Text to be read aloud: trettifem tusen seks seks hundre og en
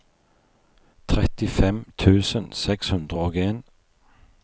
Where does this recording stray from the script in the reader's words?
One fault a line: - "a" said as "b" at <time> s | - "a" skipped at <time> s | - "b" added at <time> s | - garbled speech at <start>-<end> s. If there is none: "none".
- "seks" skipped at 2.9 s